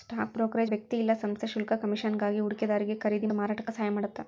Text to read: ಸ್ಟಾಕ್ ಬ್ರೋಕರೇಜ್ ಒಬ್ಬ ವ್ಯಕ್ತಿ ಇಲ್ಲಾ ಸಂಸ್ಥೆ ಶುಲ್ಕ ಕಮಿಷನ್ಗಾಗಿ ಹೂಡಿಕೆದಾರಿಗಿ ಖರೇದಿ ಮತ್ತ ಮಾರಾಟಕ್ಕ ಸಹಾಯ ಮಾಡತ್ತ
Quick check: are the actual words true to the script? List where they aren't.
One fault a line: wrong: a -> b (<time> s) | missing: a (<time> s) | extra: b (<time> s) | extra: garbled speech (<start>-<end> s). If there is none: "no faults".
missing: ಒಬ್ಬ (0.7 s)
missing: ಮತ್ತ (3.3 s)